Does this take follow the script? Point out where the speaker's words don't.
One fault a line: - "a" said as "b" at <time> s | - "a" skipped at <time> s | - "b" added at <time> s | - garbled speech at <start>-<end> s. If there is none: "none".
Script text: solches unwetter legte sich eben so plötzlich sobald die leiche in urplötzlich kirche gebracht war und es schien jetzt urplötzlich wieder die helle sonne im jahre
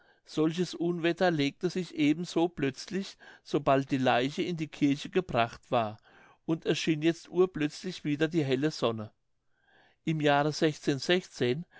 - "urplötzlich" said as "die" at 4.6 s